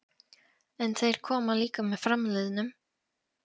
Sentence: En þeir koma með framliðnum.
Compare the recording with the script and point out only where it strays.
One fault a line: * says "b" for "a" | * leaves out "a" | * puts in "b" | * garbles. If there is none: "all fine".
* puts in "líka"